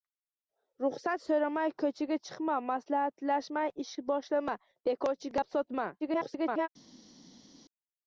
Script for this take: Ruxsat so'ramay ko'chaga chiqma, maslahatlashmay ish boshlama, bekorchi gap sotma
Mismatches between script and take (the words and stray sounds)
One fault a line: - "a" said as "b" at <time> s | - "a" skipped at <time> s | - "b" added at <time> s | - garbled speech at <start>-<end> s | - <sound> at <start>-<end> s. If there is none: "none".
- garbled speech at 6.0-6.7 s